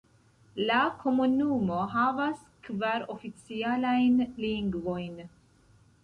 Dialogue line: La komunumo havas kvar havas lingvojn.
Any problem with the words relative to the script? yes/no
yes